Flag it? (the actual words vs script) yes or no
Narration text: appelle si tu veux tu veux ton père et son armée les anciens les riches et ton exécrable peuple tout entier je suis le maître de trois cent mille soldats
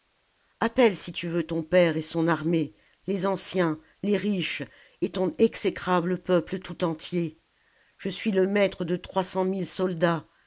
yes